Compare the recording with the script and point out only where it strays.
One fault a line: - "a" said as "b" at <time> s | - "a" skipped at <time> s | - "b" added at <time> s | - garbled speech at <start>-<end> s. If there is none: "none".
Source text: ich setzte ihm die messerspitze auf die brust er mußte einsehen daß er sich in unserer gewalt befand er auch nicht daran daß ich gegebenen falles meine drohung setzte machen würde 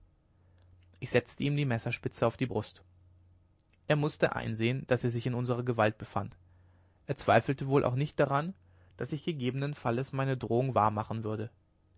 - "zweifelte wohl" added at 7.2 s
- "setzte" said as "wahr" at 10.7 s